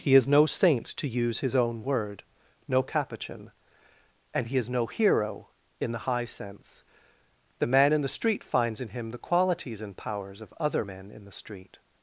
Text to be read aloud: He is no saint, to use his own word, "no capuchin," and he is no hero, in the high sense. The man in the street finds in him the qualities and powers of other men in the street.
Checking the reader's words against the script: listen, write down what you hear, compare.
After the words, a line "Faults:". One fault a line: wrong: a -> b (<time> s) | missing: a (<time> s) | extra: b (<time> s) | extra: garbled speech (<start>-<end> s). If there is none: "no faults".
He is no saint, to use his own word, "no capuchin," and he is no hero, in the high sense. The man in the street finds in him the qualities and powers of other men in the street.
Faults:
no faults